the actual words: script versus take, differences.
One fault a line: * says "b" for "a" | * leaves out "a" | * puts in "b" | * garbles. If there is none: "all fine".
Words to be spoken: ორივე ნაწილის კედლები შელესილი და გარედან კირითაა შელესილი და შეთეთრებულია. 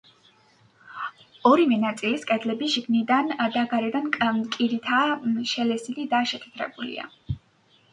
* says "შიგნიდან" for "შელესილი"